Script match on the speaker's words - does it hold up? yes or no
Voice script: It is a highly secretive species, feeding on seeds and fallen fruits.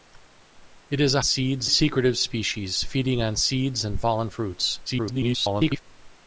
no